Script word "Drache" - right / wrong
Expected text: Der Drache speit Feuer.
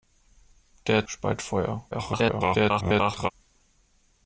wrong